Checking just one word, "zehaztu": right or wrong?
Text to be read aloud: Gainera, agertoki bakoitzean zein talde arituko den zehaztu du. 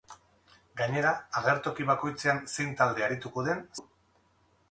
wrong